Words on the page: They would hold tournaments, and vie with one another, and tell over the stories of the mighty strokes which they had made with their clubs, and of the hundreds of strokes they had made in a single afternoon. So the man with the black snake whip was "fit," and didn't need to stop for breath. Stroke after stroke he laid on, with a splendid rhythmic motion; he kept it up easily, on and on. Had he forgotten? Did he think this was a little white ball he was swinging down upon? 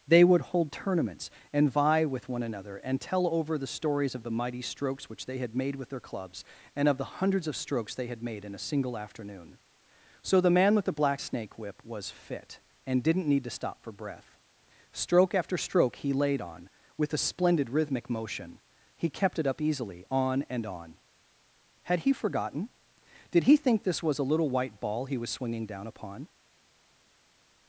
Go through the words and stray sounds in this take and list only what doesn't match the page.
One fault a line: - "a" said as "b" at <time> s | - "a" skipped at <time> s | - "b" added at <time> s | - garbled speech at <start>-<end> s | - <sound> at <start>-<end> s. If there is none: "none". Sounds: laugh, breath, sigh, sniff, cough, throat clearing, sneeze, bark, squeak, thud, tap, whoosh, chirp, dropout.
none